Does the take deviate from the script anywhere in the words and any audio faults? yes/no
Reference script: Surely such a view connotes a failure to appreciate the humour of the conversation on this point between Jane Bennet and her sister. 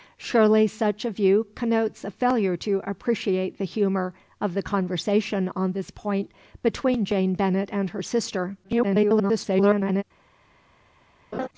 yes